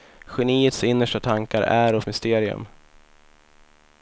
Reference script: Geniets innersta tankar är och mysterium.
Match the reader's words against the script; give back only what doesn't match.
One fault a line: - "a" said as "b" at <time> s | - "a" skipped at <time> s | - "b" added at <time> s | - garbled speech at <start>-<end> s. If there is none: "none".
none